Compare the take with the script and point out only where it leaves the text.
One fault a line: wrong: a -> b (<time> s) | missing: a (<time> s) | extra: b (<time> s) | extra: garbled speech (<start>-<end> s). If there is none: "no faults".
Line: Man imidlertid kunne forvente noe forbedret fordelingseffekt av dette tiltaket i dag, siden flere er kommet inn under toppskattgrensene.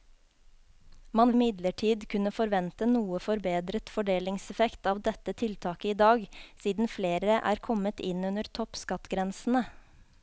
no faults